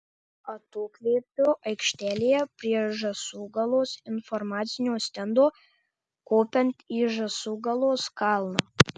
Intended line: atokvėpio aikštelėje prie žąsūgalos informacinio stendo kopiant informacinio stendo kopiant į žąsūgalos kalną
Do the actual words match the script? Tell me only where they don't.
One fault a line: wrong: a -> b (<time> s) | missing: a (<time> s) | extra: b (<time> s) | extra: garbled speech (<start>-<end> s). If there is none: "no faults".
missing: informacinio stendo kopiant (6.9 s)